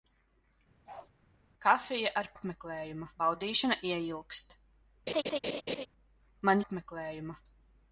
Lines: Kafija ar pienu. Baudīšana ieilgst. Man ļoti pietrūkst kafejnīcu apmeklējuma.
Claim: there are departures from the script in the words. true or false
true